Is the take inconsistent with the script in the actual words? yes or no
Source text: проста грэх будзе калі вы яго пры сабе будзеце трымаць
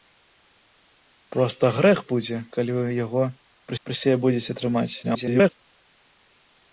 yes